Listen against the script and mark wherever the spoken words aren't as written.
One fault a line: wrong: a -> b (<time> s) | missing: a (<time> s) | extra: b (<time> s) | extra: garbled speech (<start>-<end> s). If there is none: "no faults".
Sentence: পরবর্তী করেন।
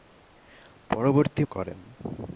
no faults